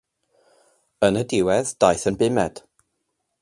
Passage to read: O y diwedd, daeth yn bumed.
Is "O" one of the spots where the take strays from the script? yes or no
yes